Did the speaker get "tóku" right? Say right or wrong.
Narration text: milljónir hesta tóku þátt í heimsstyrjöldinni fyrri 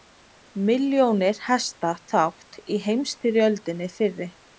wrong